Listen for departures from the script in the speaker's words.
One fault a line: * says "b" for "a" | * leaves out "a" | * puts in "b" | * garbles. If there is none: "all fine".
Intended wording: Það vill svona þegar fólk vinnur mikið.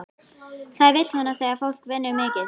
all fine